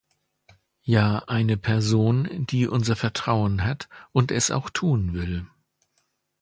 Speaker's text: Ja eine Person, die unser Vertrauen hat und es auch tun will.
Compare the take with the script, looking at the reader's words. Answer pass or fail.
pass